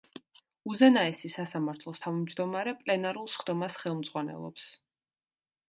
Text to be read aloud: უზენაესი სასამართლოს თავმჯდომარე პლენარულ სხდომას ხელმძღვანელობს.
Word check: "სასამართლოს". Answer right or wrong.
right